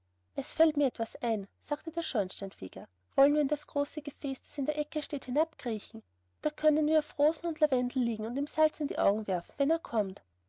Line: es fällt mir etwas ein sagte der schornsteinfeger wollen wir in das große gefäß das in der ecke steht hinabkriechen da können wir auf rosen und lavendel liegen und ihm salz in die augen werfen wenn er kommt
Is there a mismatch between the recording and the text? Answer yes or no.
no